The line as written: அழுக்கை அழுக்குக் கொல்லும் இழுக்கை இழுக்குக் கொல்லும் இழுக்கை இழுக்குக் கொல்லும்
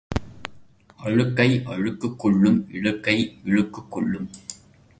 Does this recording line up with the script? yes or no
no